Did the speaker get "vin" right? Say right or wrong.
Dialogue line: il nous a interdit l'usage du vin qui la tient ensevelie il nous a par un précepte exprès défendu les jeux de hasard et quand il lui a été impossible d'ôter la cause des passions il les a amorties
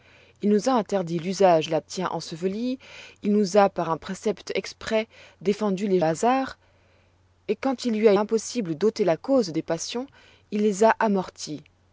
wrong